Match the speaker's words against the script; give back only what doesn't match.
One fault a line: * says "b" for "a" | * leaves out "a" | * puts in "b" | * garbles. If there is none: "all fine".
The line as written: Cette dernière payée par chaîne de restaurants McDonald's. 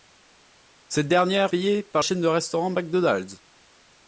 all fine